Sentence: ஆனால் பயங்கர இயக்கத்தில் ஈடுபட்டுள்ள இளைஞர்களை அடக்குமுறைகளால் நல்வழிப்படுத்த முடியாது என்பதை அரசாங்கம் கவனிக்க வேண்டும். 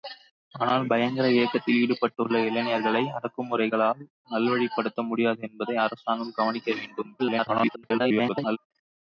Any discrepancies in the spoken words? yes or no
yes